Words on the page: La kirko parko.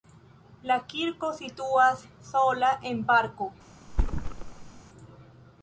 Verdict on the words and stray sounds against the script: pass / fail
fail